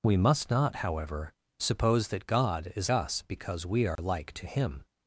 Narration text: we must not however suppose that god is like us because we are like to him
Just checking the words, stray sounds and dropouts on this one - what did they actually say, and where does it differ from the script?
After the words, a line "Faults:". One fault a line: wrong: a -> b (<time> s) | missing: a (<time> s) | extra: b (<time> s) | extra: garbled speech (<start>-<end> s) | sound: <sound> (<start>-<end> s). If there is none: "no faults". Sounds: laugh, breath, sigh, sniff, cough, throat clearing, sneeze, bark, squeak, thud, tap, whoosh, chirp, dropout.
we must not however suppose that god is us because we are like to him
Faults:
missing: like (2.9 s)
sound: dropout (4.0-4.0 s)